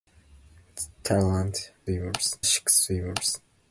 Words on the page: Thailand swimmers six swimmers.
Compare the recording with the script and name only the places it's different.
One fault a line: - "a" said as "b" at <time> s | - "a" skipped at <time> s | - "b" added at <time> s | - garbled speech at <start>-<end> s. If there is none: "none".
none